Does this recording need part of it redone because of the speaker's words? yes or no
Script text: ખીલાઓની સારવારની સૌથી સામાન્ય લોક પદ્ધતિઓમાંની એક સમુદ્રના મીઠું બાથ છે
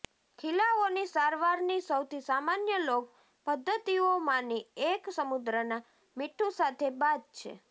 yes